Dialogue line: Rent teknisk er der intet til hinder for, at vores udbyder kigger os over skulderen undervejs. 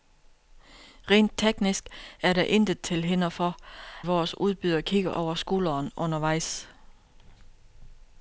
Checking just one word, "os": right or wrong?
wrong